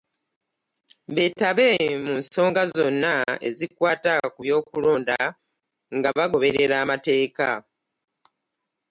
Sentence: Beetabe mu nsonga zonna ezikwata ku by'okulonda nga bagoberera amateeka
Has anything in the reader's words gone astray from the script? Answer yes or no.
no